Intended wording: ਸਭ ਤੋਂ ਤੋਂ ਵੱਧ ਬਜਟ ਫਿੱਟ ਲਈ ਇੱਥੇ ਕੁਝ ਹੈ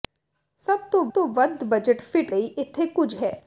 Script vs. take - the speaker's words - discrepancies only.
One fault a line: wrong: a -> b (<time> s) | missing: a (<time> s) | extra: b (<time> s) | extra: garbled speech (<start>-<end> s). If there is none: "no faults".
no faults